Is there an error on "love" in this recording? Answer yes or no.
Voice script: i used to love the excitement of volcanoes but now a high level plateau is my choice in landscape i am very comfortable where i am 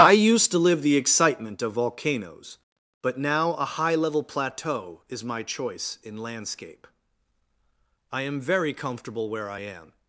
yes